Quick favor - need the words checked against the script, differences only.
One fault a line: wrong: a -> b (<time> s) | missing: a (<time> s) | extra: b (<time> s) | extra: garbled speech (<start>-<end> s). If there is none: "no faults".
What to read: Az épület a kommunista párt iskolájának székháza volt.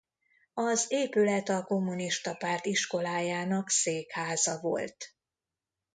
no faults